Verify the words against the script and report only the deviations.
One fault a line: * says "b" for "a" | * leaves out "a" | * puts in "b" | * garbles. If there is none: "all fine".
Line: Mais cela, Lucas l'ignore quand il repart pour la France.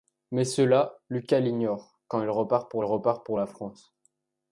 * puts in "repart pour"